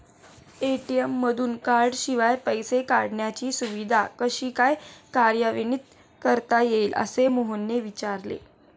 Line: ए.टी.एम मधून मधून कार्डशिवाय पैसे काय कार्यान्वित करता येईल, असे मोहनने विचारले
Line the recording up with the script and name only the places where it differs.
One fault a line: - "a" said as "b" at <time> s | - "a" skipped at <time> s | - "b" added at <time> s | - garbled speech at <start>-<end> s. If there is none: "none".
- "मधून" skipped at 1.6 s
- "काढण्याची सुविधा कशी" added at 2.8 s